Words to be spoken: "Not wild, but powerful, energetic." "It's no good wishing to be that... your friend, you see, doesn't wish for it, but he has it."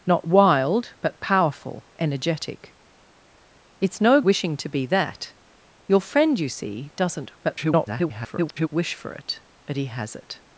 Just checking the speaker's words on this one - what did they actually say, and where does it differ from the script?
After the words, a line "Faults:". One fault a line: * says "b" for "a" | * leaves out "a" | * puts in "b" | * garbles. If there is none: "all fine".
"Not wild, but powerful, energetic." "It's no wishing to be that... your friend, you see, doesn't [garbled] wish for it, but he has it."
Faults:
* leaves out "good"
* garbles